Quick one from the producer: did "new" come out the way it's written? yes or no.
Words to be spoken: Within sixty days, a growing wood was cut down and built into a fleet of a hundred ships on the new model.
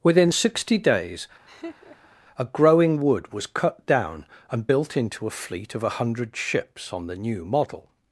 yes